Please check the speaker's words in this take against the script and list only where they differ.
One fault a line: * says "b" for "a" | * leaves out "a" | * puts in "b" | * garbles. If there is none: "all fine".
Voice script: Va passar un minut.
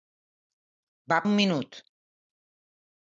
* leaves out "passar"